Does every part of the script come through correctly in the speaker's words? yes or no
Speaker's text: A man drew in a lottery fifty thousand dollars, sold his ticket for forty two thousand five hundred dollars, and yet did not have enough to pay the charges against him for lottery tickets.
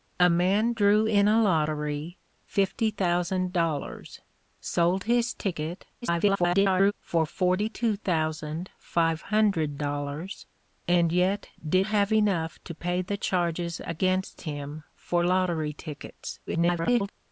no